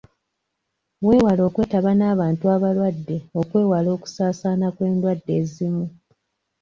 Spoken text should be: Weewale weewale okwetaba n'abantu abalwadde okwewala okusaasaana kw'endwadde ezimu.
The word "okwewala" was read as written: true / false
true